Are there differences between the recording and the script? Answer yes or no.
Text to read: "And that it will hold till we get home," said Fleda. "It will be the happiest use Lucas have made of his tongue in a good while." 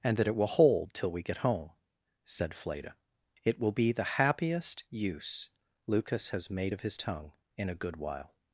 yes